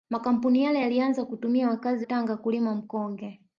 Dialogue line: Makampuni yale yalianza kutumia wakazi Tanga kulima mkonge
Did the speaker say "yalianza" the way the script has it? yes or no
yes